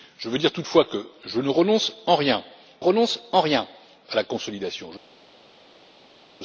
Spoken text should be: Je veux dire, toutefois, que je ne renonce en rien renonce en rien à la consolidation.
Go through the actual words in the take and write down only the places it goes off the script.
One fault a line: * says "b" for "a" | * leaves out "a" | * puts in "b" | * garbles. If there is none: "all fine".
all fine